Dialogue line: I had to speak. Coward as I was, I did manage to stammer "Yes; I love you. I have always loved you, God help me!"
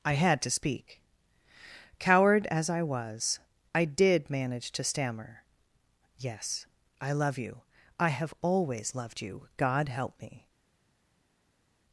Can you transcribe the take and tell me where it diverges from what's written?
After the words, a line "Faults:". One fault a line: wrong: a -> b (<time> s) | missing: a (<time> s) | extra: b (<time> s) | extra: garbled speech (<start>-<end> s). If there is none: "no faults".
I had to speak. Coward as I was, I did manage to stammer "Yes; I love you. I have always loved you, God help me!"
Faults:
no faults